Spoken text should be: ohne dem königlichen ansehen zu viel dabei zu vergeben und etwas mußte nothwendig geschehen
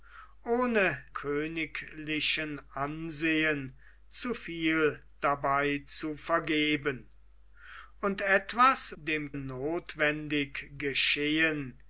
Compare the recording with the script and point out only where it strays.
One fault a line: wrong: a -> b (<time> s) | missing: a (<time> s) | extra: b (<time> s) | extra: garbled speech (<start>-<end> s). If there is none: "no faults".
missing: dem (1.1 s)
wrong: mußte -> dem (9.0 s)